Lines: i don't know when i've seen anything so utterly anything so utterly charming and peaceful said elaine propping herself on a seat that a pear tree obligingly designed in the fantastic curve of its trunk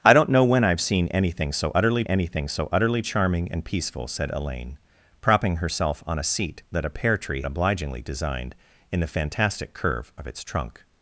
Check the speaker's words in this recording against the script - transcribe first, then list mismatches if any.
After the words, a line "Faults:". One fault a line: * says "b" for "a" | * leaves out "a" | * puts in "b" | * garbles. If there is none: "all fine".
i don't know when i've seen anything so utterly anything so utterly charming and peaceful said elaine propping herself on a seat that a pear tree obligingly designed in the fantastic curve of its trunk
Faults:
all fine